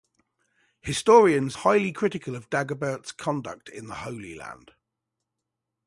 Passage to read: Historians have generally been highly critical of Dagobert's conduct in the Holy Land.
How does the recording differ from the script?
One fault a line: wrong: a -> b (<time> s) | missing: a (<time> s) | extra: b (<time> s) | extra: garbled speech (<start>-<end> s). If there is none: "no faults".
missing: have generally been (1.5 s)